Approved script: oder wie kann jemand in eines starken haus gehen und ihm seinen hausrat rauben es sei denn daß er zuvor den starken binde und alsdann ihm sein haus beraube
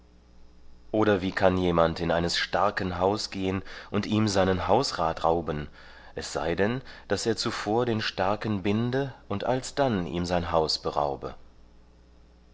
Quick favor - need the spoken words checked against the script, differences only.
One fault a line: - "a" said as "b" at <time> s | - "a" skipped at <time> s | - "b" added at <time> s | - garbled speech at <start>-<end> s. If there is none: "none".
none